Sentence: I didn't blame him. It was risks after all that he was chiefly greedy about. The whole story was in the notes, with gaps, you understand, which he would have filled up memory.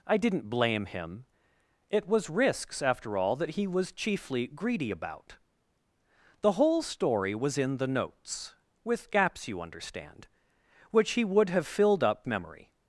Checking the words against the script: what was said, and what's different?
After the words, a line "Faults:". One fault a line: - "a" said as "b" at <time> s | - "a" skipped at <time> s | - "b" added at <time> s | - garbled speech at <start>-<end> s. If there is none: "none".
I didn't blame him. It was risks after all that he was chiefly greedy about. The whole story was in the notes, with gaps, you understand, which he would have filled up memory.
Faults:
none